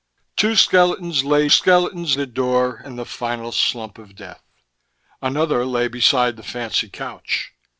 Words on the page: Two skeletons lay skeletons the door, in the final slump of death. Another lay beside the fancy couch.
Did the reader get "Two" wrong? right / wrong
right